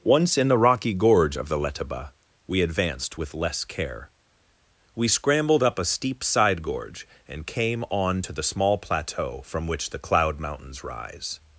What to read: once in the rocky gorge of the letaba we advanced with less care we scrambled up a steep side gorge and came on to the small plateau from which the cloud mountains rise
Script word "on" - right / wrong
right